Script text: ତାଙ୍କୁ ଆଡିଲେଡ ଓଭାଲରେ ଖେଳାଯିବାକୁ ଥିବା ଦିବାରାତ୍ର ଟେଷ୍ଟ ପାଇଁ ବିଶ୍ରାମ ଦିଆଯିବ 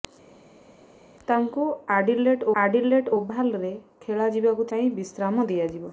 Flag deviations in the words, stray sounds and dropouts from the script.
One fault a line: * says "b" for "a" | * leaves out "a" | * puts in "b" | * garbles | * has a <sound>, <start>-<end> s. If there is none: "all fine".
* puts in "ଆଡିଲେଡ"
* leaves out "ଥିବା ଦିବାରାତ୍ର ଟେଷ୍ଟ"